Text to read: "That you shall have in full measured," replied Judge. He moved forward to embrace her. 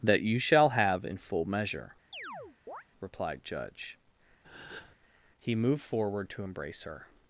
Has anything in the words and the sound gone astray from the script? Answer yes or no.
yes